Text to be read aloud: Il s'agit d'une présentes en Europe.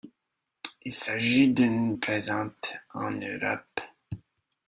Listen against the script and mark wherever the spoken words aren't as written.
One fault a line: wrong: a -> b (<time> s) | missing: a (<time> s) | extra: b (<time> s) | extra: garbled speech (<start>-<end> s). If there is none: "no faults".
no faults